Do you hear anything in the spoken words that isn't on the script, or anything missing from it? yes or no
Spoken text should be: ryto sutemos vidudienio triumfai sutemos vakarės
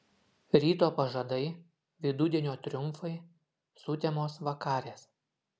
yes